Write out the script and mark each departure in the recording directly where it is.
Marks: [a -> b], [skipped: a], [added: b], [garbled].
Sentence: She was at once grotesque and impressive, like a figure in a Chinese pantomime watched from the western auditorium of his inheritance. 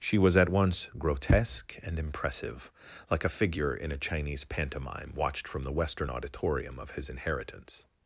She was at once grotesque and impressive, like a figure in a Chinese pantomime watched from the western auditorium of his inheritance.